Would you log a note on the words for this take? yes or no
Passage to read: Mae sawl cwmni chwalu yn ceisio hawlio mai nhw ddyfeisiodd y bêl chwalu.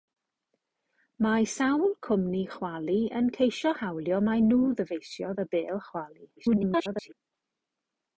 yes